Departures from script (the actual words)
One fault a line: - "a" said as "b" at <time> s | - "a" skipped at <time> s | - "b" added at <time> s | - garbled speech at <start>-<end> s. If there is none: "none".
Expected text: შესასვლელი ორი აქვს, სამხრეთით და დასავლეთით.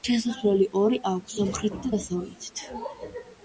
none